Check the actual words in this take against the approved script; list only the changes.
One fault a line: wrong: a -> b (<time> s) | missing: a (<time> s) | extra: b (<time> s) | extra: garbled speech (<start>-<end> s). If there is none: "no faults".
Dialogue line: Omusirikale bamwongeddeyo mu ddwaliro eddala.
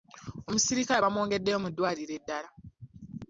no faults